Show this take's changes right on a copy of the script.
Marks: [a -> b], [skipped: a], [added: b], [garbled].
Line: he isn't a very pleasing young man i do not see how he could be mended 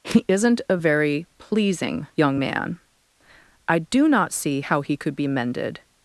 he isn't a very pleasing young man i do not see how he could be mended